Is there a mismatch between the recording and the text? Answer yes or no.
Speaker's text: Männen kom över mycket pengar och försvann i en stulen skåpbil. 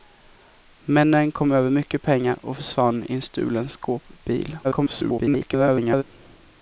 yes